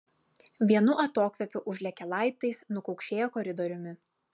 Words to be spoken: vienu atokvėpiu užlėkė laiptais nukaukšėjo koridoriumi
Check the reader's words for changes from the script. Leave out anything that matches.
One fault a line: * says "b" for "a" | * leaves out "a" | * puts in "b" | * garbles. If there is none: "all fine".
all fine